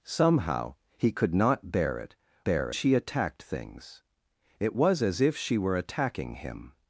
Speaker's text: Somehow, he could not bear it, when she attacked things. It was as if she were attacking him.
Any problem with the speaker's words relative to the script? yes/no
yes